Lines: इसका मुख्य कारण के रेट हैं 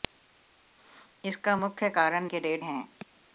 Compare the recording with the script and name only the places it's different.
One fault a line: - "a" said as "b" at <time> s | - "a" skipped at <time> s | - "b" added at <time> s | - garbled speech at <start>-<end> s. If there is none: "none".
none